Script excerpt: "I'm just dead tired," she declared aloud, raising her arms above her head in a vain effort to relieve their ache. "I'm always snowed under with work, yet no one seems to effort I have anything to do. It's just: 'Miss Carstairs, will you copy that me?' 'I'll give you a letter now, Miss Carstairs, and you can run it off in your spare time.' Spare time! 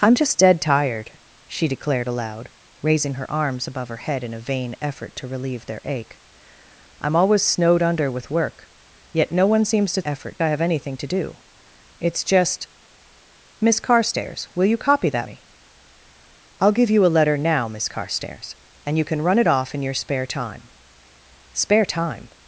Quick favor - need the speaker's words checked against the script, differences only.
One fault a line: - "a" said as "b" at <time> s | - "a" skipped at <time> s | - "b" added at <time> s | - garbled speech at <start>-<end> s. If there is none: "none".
none